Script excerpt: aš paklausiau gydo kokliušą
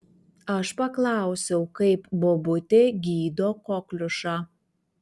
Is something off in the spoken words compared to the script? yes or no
yes